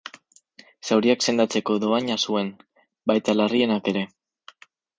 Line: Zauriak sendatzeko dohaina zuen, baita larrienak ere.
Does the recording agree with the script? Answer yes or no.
yes